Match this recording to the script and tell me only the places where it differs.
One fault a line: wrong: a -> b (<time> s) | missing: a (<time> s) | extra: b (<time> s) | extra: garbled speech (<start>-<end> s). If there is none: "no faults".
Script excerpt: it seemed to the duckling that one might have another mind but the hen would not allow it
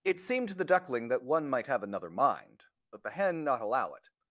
missing: would (3.4 s)